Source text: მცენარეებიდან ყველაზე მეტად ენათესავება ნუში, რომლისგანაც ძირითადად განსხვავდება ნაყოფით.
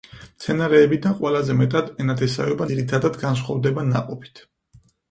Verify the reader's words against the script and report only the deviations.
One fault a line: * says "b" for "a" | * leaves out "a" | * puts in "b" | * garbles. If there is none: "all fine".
* leaves out "ნუში რომლისგანაც"